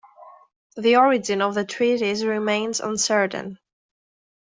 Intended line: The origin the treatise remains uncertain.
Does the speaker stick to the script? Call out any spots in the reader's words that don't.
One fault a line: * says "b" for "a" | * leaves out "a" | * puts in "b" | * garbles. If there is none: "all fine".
* puts in "of"